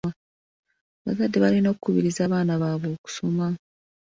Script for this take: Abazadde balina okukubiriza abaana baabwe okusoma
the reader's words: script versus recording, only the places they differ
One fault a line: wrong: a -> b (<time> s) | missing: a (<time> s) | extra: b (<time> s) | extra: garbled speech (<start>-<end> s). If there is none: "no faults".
no faults